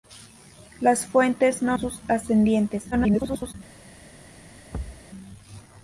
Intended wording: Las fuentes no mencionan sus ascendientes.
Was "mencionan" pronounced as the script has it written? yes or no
no